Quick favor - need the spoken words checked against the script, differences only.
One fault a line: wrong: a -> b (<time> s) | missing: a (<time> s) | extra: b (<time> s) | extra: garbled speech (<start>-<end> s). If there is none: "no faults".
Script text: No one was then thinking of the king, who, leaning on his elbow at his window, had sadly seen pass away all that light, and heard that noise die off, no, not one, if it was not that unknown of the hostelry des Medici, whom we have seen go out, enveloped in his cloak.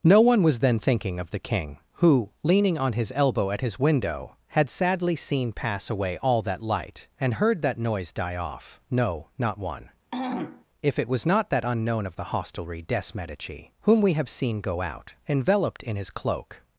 no faults